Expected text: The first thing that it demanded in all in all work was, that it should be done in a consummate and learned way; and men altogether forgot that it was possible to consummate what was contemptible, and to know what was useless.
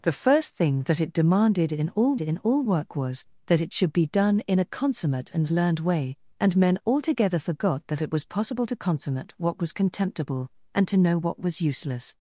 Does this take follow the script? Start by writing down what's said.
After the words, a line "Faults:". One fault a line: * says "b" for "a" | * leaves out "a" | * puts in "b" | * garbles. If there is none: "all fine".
The first thing that it demanded in all in all work was, that it should be done in a consummate and learned way; and men altogether forgot that it was possible to consummate what was contemptible, and to know what was useless.
Faults:
all fine